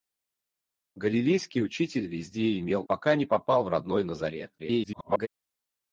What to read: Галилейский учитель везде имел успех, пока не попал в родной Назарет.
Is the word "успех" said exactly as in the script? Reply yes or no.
no